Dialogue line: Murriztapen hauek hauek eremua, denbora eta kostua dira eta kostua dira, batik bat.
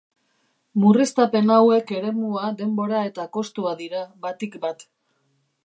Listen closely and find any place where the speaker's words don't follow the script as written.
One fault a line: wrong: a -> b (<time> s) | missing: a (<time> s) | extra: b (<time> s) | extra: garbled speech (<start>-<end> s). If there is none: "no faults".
missing: hauek (1.9 s)
missing: eta kostua dira (4.0 s)